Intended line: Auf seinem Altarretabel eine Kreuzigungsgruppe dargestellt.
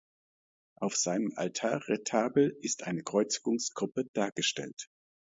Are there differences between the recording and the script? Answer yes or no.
yes